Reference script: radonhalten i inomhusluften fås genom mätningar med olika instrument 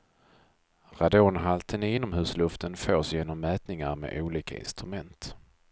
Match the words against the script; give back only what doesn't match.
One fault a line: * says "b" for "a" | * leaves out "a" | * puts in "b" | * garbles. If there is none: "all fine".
all fine